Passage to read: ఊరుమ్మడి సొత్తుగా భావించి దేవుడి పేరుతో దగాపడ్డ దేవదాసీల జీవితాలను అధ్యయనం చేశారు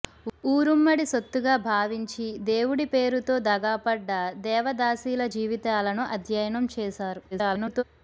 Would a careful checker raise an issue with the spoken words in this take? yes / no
yes